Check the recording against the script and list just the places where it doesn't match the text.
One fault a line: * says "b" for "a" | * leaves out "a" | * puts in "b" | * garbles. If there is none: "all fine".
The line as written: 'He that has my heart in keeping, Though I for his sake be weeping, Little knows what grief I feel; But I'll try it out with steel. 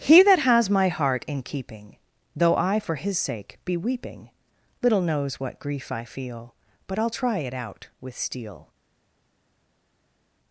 all fine